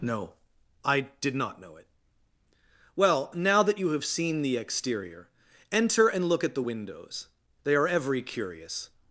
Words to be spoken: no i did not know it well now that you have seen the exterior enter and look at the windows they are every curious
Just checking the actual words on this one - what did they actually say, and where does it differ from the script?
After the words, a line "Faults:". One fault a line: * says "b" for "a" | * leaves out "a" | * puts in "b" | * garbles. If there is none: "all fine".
no i did not know it well now that you have seen the exterior enter and look at the windows they are every curious
Faults:
all fine